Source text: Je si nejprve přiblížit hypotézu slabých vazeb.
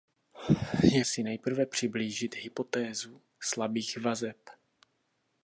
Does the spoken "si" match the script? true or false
true